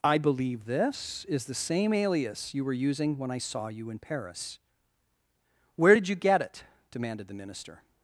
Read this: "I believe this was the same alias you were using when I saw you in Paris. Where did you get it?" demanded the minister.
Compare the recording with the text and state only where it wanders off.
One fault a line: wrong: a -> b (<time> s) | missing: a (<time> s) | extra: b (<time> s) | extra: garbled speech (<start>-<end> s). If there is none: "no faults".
wrong: was -> is (1.2 s)